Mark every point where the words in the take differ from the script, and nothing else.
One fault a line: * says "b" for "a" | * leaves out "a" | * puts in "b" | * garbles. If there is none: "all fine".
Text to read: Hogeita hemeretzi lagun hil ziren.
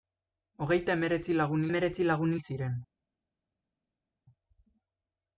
* puts in "hemeretzi lagun"